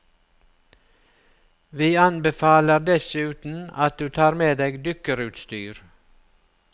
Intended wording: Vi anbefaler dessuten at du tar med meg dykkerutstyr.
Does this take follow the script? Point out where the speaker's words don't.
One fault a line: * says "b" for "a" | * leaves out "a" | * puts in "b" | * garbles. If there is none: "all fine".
* says "deg" for "meg"